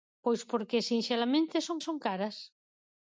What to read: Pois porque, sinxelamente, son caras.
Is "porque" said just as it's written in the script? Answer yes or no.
yes